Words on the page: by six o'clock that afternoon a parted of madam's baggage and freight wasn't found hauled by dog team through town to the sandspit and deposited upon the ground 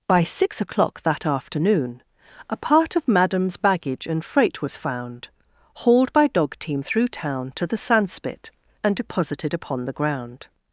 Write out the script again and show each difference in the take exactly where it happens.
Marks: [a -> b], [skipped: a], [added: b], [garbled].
by six o'clock that afternoon a [parted -> part] of madam's baggage and freight [wasn't -> was] found hauled by dog team through town to the sandspit and deposited upon the ground